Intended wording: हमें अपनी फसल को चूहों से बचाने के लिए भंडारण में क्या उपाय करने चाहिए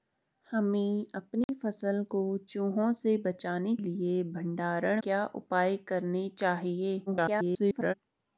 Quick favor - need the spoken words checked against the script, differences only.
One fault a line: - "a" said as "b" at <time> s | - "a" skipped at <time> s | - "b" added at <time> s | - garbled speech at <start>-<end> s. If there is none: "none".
- "के" skipped at 3.8 s
- "में" skipped at 5.0 s
- garbled speech at 7.1-7.9 s